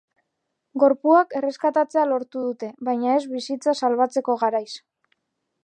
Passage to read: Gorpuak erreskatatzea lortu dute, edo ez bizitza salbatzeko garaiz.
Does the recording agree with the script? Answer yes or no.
no